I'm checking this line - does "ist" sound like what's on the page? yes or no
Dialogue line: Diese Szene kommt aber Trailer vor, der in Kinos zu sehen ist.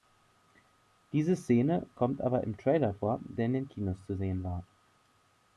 no